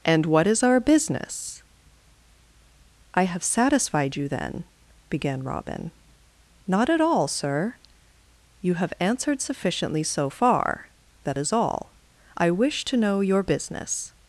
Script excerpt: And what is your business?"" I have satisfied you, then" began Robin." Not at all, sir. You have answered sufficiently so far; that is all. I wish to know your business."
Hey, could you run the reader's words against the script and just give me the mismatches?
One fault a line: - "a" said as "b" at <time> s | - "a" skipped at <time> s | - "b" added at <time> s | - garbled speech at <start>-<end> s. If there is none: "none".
- "your" said as "our" at 0.6 s